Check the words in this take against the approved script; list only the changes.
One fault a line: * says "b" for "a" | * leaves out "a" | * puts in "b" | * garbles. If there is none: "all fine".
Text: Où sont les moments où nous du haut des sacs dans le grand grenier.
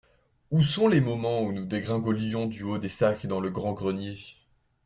* puts in "dégringolions"